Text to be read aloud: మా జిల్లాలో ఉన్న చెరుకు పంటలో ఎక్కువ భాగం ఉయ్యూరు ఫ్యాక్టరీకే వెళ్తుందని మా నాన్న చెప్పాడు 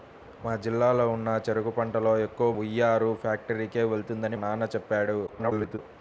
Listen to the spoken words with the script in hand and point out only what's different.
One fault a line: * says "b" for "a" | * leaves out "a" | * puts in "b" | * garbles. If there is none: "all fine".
* leaves out "భాగం"
* leaves out "మా"
* garbles